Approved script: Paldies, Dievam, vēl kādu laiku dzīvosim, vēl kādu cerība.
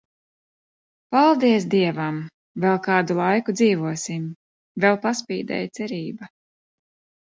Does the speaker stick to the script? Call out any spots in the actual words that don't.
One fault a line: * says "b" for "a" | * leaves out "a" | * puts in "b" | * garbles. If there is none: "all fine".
* says "paspīdēja" for "kādu"